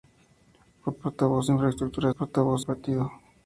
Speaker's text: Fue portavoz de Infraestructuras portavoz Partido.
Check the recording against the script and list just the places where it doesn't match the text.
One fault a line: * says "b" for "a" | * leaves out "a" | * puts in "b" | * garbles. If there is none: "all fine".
all fine